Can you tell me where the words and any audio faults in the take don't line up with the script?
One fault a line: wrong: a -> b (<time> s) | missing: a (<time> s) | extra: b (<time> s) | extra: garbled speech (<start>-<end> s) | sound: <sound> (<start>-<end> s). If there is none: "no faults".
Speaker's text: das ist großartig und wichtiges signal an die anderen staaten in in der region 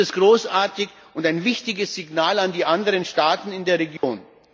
extra: ein (1.3 s)
missing: in (3.6 s)
sound: dropout (4.0-4.0 s)